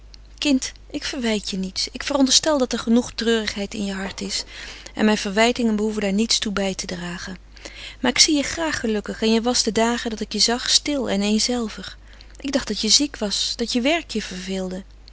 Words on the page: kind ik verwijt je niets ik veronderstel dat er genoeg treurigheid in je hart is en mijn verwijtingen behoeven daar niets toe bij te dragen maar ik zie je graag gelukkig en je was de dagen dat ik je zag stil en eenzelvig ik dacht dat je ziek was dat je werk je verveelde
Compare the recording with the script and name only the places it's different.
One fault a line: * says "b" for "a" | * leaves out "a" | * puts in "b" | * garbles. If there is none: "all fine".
all fine